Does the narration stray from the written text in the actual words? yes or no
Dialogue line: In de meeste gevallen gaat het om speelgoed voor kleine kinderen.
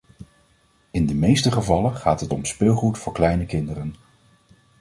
no